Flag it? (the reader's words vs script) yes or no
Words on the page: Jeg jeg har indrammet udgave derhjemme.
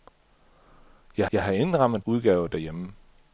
no